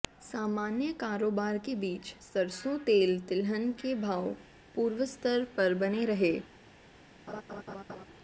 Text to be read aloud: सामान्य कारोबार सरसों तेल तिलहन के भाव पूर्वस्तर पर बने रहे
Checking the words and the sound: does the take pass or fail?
fail